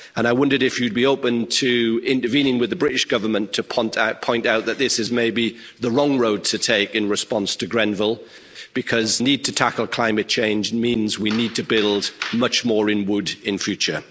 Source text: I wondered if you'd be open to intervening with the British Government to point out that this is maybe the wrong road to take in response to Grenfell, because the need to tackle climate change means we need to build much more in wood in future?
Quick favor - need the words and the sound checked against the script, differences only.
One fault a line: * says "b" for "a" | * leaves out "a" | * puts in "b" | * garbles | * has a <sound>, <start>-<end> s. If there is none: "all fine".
* leaves out "the"